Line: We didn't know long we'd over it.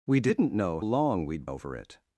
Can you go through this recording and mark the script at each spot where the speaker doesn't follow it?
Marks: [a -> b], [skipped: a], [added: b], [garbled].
We didn't know long we'd over it.